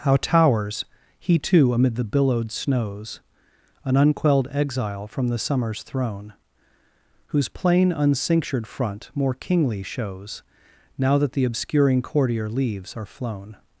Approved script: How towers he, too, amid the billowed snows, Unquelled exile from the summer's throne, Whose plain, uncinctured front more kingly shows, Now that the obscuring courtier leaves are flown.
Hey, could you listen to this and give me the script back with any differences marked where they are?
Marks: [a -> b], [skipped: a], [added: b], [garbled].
How towers he, too, amid the billowed snows, [added: An] Unquelled exile from the summer's throne, Whose plain, uncinctured front more kingly shows, Now that the obscuring courtier leaves are flown.